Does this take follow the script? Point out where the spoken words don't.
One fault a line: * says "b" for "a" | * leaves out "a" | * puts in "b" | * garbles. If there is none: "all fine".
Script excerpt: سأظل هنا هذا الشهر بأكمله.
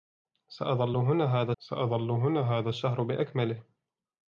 * puts in "سأظل هنا هذا"